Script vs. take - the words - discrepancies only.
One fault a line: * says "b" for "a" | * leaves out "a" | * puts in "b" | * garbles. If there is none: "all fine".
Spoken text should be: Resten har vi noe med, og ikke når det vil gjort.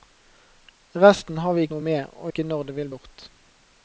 all fine